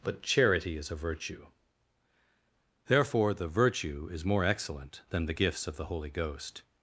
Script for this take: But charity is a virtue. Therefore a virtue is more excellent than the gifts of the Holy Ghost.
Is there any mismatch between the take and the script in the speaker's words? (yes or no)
yes